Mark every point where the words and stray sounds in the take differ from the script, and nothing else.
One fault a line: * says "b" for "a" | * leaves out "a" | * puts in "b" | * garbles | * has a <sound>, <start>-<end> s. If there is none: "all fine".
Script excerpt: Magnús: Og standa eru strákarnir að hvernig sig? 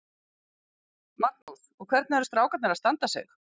* has a dropout, 1.4-1.5 s
* says "hvernig" for "standa"
* says "standa" for "hvernig"